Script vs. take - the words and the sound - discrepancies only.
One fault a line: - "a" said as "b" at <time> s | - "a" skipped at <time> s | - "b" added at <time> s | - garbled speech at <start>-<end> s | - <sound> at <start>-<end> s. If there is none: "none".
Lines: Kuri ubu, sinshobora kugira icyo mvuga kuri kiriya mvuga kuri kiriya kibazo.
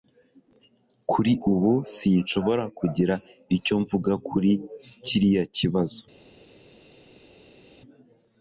- "mvuga kuri kiriya" skipped at 5.4 s